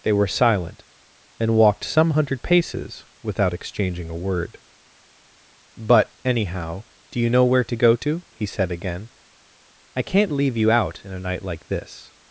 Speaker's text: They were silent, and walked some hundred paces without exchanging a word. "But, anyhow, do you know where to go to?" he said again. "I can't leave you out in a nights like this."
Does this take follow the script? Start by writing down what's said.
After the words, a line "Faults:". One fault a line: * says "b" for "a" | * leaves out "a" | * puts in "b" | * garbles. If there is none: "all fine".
They were silent, and walked some hundred paces without exchanging a word. "But, anyhow, do you know where to go to?" he said again. "I can't leave you out in a night like this."
Faults:
* says "night" for "nights"